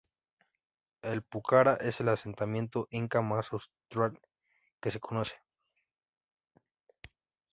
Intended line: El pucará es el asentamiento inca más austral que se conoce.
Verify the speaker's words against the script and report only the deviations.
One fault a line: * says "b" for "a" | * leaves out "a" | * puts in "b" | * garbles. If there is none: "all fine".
all fine